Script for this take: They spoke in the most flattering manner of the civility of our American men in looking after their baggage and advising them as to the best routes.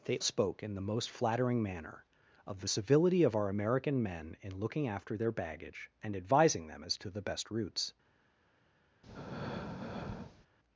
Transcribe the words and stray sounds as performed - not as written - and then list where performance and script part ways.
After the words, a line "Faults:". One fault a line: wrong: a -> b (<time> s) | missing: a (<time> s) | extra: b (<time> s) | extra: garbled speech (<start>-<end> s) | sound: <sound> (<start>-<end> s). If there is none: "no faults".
They spoke in the most flattering manner of the civility of our American men in looking after their baggage and advising them as to the best routes.
Faults:
sound: breath (9.0-10.5 s)